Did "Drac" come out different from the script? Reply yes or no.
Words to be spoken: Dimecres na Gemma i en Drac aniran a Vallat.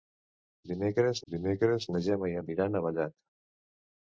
yes